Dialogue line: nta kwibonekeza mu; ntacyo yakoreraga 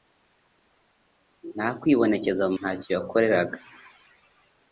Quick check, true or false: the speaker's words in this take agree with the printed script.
true